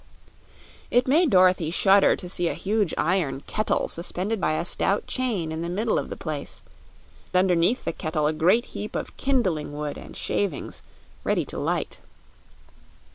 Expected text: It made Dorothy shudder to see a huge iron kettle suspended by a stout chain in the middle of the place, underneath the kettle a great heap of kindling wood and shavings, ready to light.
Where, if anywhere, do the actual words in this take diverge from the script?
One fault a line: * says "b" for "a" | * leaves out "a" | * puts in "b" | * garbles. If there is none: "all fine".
all fine